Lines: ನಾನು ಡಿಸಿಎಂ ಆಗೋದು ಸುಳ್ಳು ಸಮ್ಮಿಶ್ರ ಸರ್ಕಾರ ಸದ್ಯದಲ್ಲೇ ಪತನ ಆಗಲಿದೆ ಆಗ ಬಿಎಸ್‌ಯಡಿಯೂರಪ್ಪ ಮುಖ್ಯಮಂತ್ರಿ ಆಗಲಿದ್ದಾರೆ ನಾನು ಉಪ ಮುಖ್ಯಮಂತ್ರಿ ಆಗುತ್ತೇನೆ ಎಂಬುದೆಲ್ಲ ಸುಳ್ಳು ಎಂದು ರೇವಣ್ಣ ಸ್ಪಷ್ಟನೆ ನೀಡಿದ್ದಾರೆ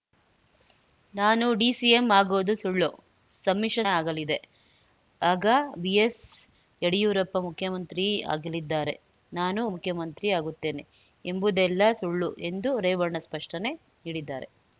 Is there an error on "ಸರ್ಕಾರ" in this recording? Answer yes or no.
yes